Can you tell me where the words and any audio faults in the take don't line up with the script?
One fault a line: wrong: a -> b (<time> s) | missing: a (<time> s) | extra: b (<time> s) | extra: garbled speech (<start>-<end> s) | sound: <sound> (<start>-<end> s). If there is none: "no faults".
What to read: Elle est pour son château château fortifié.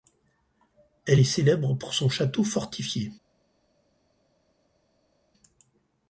extra: célèbre (1.2 s)
missing: château (2.4 s)